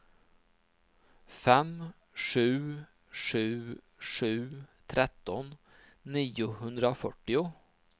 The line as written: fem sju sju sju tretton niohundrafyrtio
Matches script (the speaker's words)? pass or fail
pass